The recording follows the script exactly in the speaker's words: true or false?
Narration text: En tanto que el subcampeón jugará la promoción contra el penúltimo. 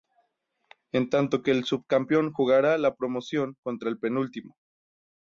true